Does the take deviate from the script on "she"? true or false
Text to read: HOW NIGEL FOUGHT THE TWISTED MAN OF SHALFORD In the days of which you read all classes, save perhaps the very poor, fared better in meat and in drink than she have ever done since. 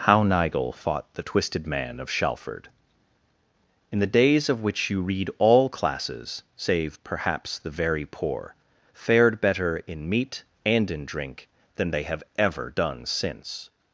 true